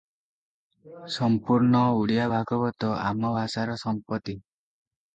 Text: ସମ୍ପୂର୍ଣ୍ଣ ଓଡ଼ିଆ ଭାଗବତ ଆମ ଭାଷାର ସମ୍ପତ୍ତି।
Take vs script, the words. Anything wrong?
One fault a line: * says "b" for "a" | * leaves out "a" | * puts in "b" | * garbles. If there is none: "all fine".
all fine